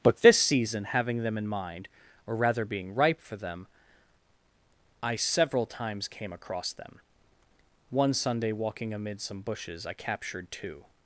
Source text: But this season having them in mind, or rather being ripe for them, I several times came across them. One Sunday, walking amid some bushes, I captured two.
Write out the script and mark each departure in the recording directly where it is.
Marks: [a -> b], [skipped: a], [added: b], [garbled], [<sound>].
But this season having them in mind, or rather being ripe for them, I several times came across them. One Sunday, walking amid some bushes, I captured two.